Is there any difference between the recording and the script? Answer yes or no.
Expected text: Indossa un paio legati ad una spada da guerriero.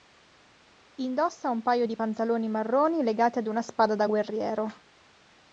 yes